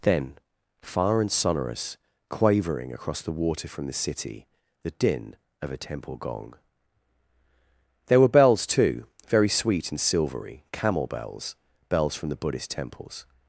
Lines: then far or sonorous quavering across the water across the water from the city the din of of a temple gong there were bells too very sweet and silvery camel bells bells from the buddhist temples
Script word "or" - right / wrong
wrong